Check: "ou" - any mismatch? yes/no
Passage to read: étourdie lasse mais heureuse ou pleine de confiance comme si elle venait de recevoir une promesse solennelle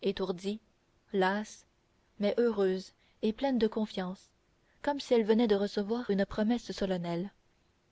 yes